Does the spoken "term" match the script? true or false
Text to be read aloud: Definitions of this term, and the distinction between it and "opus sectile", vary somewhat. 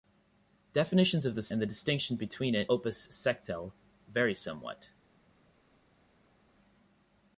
false